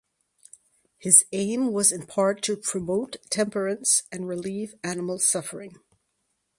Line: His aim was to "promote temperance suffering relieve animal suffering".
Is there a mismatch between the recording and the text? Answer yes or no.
yes